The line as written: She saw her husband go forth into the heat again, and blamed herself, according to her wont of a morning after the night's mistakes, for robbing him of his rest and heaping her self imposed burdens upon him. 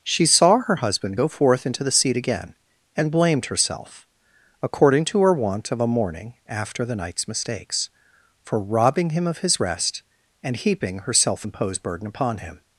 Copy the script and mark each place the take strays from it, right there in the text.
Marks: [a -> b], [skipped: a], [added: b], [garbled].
She saw her husband go forth into the [heat -> seat] again, and blamed herself, according to her wont of a morning after the night's mistakes, for robbing him of his rest and heaping her self imposed [burdens -> burden] upon him.